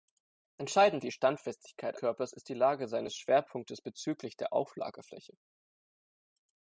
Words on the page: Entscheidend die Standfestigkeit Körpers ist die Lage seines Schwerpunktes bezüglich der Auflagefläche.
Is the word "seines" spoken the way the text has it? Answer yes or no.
yes